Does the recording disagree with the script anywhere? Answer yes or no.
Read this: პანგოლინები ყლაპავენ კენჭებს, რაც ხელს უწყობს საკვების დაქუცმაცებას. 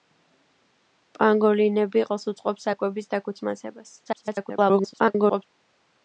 yes